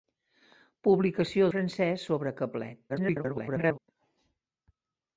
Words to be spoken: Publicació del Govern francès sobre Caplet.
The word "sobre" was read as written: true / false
true